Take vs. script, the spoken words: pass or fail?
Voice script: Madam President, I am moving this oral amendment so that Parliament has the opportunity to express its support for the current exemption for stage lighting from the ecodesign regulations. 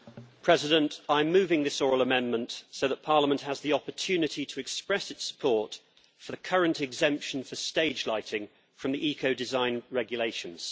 pass